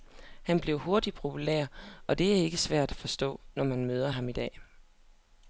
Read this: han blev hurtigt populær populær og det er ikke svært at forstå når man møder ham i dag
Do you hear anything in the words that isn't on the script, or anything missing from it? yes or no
yes